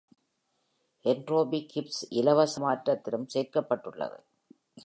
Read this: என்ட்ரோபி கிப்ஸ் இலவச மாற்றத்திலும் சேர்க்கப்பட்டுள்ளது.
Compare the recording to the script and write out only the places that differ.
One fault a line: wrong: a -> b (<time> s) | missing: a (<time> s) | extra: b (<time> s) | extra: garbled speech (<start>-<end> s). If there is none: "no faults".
no faults